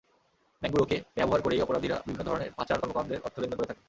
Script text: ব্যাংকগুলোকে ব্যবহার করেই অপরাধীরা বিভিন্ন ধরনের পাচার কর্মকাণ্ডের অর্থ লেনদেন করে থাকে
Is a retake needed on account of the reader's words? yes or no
no